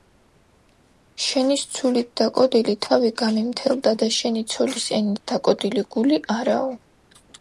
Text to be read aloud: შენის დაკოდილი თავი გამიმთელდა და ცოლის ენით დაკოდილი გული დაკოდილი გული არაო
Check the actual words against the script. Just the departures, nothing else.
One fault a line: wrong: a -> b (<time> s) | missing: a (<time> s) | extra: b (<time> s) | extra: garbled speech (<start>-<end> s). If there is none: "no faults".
extra: ცულით (1.8 s)
extra: შენი (4.2 s)
missing: დაკოდილი გული (6.2 s)